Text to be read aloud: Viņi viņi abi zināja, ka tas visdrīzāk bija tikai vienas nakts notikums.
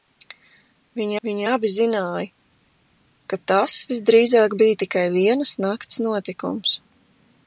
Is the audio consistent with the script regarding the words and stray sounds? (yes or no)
yes